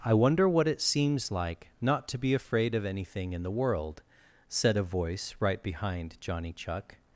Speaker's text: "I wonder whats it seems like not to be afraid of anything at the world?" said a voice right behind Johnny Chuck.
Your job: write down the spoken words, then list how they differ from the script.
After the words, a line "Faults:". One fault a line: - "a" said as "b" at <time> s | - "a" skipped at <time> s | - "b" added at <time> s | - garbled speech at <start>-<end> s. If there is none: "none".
"I wonder what it seems like not to be afraid of anything in the world?" said a voice right behind Johnny Chuck.
Faults:
- "whats" said as "what" at 0.5 s
- "at" said as "in" at 3.3 s